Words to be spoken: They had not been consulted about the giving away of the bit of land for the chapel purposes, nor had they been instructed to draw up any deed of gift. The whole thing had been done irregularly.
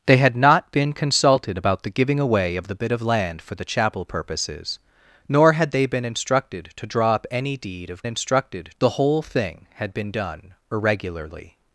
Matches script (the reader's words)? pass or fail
fail